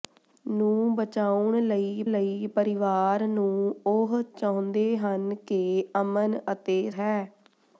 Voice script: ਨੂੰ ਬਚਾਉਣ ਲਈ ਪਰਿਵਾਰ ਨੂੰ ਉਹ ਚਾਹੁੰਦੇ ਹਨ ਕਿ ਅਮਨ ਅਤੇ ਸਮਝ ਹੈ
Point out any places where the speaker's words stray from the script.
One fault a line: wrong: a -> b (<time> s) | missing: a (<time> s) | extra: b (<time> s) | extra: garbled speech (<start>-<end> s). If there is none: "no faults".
extra: ਲਈ (2.0 s)
missing: ਸਮਝ (6.9 s)